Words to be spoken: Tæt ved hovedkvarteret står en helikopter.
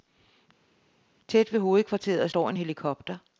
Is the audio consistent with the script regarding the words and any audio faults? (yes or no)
yes